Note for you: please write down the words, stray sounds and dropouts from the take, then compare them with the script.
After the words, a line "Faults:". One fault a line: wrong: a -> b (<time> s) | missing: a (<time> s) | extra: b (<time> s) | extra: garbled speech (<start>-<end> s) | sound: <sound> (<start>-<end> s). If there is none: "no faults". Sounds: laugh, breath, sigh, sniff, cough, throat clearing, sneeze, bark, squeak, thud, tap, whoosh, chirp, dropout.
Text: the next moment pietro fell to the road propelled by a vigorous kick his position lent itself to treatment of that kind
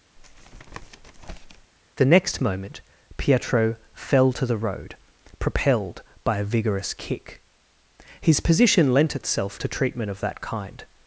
the next moment pietro fell to the road propelled by a vigorous kick his position lent itself to treatment of that kind
Faults:
sound: tap (0.2-1.7 s)